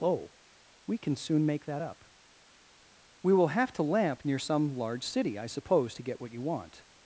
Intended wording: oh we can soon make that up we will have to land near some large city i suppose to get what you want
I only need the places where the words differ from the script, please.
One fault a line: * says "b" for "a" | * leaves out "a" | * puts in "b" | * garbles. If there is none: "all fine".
* says "lamp" for "land"